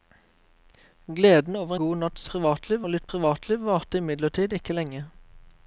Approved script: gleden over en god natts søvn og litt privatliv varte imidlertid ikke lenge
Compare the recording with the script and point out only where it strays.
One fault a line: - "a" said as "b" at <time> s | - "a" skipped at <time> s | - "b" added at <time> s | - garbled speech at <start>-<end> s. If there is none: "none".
- "en" skipped at 1.8 s
- "søvn" said as "privatliv" at 2.3 s